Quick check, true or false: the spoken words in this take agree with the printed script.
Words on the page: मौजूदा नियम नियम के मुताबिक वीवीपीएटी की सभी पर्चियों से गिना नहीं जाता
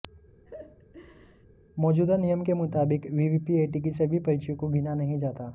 false